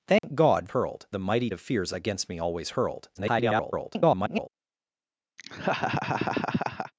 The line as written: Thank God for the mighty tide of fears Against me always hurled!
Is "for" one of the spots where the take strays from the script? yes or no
yes